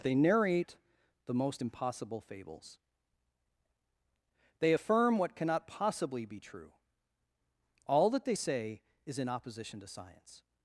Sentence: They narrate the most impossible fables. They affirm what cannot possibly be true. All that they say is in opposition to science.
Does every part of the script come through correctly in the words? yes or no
yes